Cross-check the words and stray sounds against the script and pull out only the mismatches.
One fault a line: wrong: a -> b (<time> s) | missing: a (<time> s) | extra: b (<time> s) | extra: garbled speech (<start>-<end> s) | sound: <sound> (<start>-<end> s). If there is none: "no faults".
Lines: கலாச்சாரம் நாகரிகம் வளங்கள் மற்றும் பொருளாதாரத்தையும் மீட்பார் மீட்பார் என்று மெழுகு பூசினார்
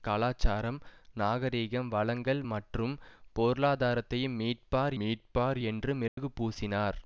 sound: dropout (6.1-6.2 s)